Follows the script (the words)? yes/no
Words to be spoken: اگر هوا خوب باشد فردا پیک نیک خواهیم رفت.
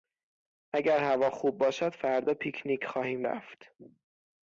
yes